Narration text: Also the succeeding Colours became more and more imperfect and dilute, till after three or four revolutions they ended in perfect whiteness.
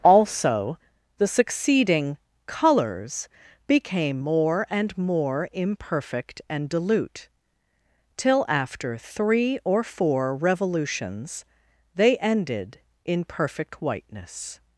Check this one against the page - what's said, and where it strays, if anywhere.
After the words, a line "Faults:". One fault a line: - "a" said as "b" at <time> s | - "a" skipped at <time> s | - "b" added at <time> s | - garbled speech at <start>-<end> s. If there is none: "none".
Also the succeeding Colours became more and more imperfect and dilute, till after three or four revolutions they ended in perfect whiteness.
Faults:
none